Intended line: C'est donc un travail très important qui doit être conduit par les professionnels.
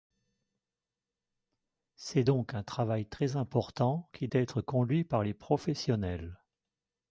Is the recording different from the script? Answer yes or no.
yes